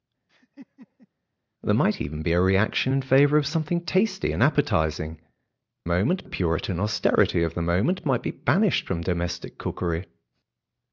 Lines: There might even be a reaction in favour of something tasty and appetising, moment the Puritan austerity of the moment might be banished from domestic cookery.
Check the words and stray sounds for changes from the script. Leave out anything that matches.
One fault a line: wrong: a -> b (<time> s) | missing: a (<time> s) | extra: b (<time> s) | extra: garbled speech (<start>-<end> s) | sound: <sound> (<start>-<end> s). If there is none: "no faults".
sound: laugh (0.3-1.1 s)